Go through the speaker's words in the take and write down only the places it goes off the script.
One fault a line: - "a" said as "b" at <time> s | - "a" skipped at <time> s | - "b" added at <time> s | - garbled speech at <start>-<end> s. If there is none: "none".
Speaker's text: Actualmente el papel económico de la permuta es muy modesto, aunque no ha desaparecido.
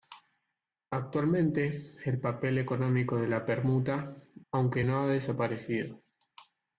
- "es muy modesto" skipped at 4.2 s